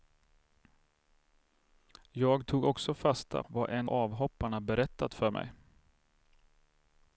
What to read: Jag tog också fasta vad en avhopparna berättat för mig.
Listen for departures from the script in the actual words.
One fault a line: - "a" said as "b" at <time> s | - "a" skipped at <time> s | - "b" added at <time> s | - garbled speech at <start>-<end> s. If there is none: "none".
none